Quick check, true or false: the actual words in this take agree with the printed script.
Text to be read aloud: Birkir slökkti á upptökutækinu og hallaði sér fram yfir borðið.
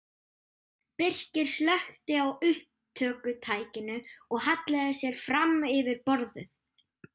true